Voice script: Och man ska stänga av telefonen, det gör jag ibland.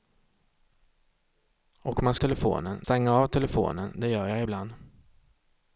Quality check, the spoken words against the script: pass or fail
fail